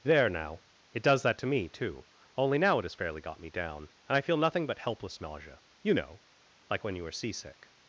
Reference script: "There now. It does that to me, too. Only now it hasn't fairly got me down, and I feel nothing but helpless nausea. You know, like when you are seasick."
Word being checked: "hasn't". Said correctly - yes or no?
no